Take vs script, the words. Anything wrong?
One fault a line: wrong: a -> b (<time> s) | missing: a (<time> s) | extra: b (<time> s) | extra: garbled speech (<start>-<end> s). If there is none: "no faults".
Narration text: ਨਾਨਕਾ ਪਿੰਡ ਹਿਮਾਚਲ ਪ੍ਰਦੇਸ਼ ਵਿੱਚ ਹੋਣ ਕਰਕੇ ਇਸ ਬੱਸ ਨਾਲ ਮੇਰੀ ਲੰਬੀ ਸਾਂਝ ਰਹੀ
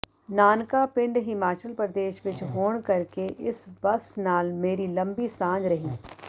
no faults